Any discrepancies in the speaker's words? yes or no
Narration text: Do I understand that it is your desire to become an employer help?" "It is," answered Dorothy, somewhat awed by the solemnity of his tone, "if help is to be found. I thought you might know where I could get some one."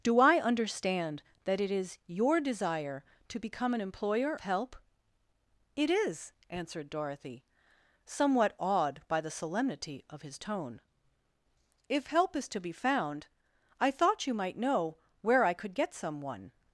no